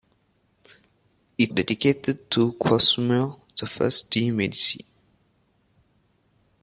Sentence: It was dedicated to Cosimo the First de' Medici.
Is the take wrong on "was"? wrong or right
wrong